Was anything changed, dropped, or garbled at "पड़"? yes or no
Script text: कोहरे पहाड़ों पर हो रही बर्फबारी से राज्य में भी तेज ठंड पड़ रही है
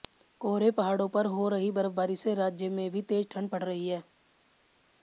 no